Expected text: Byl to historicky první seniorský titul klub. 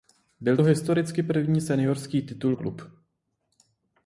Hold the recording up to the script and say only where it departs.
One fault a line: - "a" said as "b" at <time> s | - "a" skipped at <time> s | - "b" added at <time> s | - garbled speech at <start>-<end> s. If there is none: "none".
none